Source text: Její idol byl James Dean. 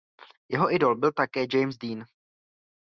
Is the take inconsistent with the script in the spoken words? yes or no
yes